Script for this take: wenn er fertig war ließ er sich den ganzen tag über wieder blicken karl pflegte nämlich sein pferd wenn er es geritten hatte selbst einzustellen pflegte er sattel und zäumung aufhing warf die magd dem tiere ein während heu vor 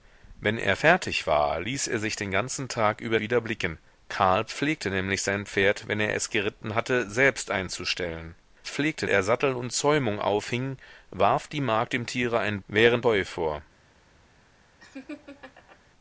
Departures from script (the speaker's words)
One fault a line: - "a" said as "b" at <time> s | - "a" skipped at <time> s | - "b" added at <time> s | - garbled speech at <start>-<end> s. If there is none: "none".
none